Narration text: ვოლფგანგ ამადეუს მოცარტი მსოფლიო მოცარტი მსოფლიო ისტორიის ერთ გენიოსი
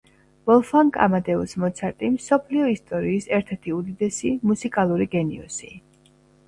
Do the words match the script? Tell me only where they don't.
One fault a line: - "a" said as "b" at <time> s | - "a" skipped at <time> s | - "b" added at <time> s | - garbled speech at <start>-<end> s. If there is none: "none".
- "მოცარტი მსოფლიო ისტორიის ერთ" said as "ისტორიის ერთ ერთი უდიდესი მუსიკალური" at 2.7 s